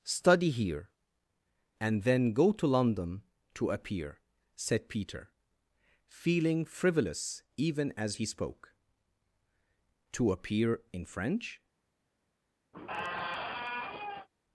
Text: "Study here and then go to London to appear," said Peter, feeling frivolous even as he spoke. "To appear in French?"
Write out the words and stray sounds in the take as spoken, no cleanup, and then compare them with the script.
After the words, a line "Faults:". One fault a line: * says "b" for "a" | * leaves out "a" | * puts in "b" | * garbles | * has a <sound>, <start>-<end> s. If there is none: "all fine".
"Study here and then go to London to appear," said Peter, feeling frivolous even as he spoke. "To appear in French?"
Faults:
* has a squeak, 12.7-14.3 s